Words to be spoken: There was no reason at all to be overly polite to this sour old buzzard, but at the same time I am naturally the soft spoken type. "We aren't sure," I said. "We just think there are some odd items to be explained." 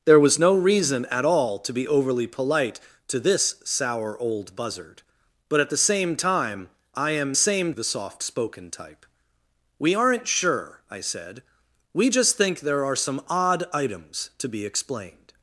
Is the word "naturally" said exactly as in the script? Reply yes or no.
no